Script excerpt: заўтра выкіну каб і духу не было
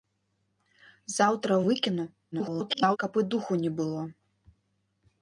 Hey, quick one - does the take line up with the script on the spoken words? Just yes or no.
no